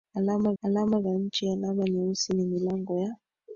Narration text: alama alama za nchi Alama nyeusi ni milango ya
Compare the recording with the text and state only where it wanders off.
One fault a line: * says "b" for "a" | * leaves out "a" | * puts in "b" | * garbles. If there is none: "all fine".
all fine